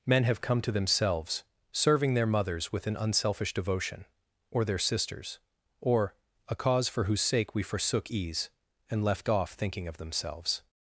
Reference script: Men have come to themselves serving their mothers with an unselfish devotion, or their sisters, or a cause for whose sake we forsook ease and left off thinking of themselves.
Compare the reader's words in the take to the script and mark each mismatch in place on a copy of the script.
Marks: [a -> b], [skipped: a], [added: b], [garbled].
Men have come to themselves serving their mothers with an unselfish devotion, or their sisters, or a cause for whose sake we forsook ease and left off thinking of themselves.